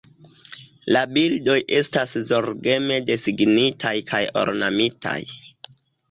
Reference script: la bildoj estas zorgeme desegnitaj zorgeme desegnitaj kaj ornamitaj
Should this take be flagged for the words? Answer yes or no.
yes